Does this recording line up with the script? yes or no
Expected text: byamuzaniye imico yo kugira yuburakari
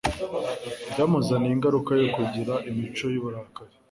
no